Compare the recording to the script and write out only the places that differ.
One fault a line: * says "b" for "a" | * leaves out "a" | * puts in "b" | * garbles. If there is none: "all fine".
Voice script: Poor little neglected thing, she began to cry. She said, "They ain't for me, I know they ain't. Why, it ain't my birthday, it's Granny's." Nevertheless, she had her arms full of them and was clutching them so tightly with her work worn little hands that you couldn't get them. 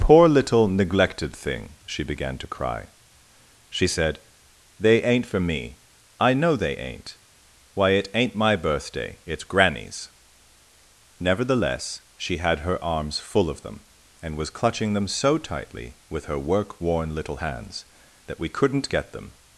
* says "we" for "you"